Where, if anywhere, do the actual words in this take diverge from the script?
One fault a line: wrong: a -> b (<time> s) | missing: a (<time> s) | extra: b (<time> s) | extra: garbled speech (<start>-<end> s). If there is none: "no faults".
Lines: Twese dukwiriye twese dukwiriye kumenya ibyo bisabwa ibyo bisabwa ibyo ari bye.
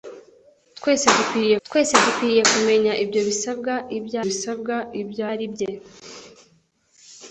no faults